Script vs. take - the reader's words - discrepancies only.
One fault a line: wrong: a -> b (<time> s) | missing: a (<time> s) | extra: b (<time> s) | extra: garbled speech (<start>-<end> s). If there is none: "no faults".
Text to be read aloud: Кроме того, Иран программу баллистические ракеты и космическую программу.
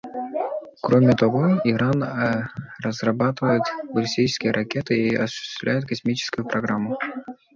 wrong: программу -> разрабатывает (2.8 s)
extra: осуществляет (5.2 s)